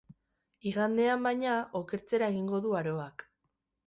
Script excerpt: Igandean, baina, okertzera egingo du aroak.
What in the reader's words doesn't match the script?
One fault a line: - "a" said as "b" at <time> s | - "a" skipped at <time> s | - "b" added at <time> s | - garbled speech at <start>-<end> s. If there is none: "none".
none